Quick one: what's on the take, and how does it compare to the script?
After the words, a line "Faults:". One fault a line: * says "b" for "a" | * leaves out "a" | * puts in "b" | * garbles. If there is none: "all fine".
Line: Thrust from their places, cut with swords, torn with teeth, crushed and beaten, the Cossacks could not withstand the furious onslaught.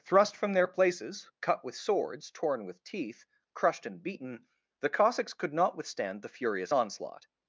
Thrust from their places, cut with swords, torn with teeth, crushed and beaten, the Cossacks could not withstand the furious onslaught.
Faults:
all fine